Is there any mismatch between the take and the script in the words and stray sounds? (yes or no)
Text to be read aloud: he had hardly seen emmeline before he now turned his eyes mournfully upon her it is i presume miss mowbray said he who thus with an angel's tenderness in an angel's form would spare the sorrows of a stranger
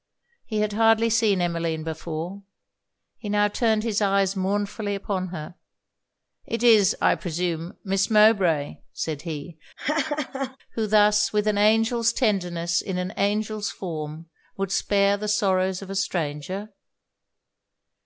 yes